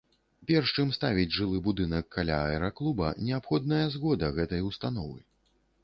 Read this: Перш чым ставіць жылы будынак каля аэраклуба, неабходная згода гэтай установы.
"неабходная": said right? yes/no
yes